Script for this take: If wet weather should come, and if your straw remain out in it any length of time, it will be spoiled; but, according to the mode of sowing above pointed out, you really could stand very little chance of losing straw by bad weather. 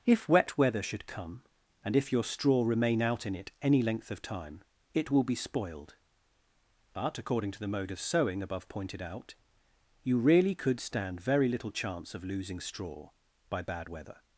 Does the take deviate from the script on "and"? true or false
false